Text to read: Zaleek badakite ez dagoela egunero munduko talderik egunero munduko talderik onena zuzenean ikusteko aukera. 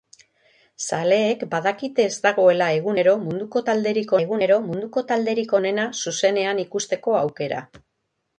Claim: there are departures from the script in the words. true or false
false